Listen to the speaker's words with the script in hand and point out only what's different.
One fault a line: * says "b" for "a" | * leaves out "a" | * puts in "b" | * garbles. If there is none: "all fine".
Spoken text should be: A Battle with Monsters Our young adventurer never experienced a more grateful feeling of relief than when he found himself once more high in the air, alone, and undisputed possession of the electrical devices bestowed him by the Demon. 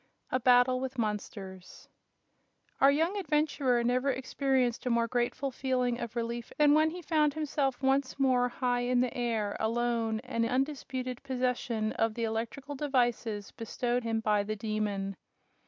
all fine